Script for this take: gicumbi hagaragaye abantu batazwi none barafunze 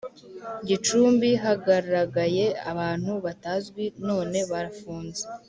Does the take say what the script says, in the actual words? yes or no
yes